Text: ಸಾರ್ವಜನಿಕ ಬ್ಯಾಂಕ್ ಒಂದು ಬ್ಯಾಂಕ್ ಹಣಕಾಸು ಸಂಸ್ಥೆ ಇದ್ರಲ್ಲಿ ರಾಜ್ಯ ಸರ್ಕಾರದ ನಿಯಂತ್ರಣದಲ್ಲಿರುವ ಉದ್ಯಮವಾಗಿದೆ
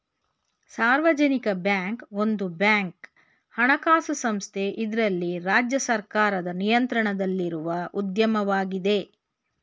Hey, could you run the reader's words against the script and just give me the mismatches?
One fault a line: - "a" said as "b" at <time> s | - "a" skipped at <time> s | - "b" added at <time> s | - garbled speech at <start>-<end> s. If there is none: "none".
none